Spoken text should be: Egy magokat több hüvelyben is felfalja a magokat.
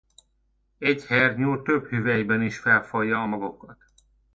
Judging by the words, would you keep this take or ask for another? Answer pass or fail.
fail